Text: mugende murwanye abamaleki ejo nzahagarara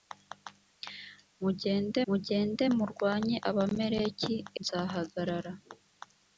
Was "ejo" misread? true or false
true